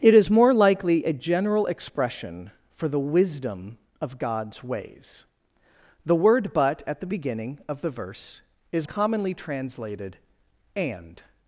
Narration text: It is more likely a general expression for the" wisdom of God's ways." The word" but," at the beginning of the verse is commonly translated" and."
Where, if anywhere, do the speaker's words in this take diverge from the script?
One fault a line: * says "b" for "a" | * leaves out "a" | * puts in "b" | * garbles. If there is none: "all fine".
all fine